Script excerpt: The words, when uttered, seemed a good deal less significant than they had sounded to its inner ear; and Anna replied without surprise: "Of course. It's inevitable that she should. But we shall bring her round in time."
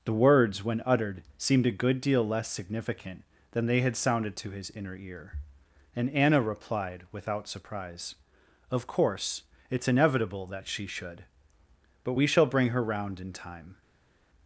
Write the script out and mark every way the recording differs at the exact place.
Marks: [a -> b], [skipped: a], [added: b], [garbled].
The words, when uttered, seemed a good deal less significant than they had sounded to [its -> his] inner ear; and Anna replied without surprise: "Of course. It's inevitable that she should. But we shall bring her round in time."